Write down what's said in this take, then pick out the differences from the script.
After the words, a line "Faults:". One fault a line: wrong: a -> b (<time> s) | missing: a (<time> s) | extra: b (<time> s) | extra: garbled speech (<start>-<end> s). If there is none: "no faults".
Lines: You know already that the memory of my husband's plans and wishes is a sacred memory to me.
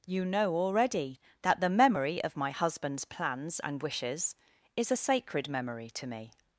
You know already that the memory of my husband's plans and wishes is a sacred memory to me.
Faults:
no faults